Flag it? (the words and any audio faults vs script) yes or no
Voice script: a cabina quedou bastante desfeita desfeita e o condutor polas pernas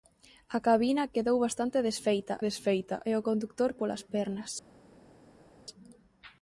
no